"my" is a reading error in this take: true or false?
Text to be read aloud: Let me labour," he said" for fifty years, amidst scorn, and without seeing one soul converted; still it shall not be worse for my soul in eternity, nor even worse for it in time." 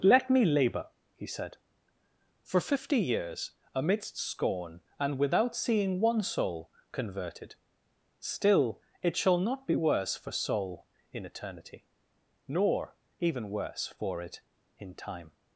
true